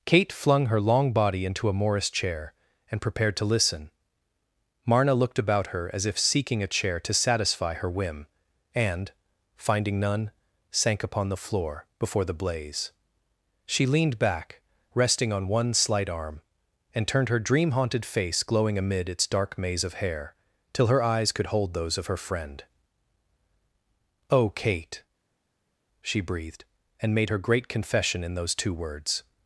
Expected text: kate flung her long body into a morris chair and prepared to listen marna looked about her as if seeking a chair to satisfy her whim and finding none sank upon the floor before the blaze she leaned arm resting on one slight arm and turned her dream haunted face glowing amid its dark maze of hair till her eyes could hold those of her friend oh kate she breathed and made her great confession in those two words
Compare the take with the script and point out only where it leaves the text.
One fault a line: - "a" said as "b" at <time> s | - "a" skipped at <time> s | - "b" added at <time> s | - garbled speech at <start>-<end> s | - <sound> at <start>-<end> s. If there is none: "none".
- "arm" said as "back" at 14.2 s